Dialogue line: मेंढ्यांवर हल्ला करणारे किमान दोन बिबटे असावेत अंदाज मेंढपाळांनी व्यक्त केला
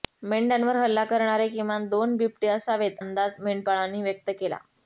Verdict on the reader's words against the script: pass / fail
pass